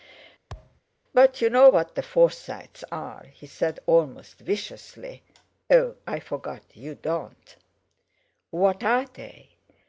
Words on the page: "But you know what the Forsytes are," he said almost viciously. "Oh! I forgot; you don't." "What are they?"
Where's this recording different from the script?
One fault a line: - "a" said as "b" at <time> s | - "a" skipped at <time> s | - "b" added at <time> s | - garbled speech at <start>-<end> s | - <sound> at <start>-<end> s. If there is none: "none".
- thud at 0.5-0.8 s